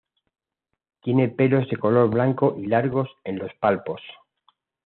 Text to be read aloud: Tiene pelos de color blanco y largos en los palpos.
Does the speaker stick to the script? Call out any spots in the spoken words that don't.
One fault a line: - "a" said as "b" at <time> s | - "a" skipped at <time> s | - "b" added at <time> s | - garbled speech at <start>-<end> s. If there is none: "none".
none